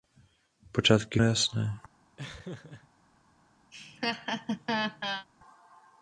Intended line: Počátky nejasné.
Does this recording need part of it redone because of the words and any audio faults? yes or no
yes